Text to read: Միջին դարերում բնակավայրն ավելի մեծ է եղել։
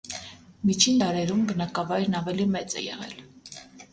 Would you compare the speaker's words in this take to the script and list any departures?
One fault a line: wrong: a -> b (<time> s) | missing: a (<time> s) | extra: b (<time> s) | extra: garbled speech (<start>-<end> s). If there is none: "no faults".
no faults